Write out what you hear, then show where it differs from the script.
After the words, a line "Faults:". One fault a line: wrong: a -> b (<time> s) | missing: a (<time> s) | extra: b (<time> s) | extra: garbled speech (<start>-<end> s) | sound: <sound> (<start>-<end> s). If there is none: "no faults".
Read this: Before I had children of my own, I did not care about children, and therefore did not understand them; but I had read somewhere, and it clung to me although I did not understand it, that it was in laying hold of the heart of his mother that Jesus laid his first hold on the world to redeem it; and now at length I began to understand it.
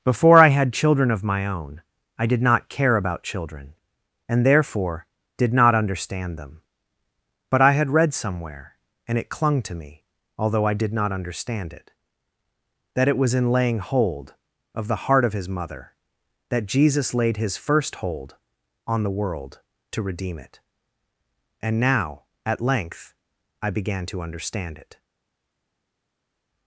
Before I had children of my own, I did not care about children, and therefore did not understand them; but I had read somewhere, and it clung to me although I did not understand it, that it was in laying hold of the heart of his mother that Jesus laid his first hold on the world to redeem it; and now at length I began to understand it.
Faults:
no faults